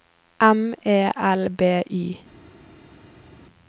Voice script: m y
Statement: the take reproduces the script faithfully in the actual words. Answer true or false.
false